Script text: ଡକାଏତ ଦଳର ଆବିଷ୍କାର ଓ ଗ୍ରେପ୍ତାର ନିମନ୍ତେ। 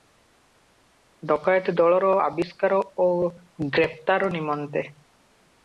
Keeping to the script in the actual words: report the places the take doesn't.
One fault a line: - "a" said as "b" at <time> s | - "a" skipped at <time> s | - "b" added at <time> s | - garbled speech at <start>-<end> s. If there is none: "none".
none